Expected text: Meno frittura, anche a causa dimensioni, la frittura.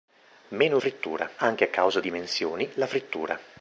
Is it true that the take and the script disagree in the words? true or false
false